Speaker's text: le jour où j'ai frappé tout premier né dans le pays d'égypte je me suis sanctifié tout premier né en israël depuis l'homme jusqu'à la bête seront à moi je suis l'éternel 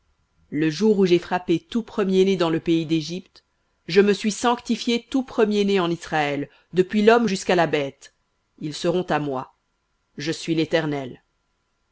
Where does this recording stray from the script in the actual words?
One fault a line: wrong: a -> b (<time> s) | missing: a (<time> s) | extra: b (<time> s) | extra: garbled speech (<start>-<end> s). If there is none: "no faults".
extra: ils (8.6 s)